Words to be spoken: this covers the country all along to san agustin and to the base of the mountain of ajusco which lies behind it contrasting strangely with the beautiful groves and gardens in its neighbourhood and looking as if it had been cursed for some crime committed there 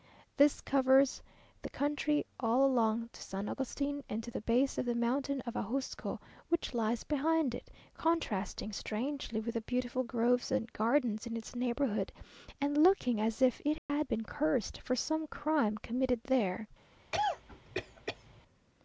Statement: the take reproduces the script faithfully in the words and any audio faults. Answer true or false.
false